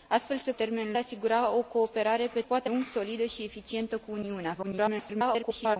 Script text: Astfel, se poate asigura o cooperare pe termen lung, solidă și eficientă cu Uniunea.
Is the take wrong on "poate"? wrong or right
wrong